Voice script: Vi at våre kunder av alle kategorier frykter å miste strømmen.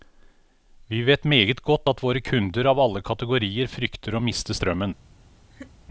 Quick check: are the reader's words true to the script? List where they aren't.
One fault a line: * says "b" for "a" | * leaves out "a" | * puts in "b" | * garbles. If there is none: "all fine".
* puts in "vet meget godt"